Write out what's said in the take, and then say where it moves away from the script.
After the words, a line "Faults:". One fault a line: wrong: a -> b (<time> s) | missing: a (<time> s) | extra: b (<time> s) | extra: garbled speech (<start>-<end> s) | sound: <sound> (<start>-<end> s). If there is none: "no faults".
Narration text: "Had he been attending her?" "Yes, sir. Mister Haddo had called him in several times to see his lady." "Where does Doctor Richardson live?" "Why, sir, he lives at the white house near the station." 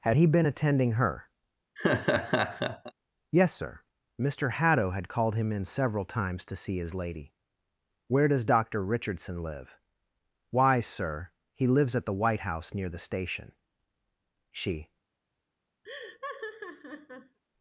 "Had he been attending her?" "Yes, sir. Mister Haddo had called him in several times to see his lady." "Where does Doctor Richardson live?" "Why, sir, he lives at the white house near the station." She
Faults:
sound: laugh (1.8-2.9 s)
extra: She (14.5 s)
sound: laugh (15.8-17.4 s)